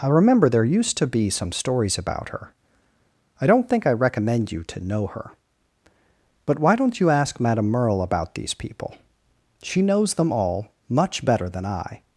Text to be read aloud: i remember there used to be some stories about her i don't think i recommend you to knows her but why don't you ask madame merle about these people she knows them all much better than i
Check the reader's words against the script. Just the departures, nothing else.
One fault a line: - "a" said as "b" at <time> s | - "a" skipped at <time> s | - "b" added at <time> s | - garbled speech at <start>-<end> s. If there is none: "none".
- "knows" said as "know" at 4.9 s